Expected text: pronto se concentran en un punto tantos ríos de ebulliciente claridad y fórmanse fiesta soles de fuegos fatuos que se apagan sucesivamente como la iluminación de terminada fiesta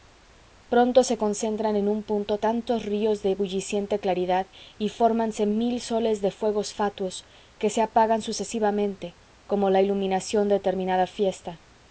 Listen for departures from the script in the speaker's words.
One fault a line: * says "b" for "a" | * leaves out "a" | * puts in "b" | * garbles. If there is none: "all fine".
* says "mil" for "fiesta"